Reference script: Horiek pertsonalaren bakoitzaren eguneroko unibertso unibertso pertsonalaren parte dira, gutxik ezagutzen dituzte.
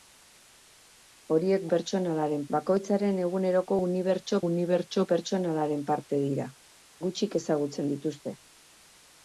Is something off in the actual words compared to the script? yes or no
no